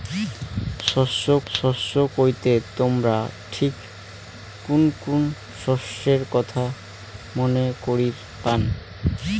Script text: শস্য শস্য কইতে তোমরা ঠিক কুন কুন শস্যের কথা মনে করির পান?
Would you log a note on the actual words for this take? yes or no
no